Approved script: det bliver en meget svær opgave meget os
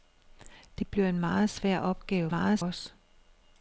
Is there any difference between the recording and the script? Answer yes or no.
no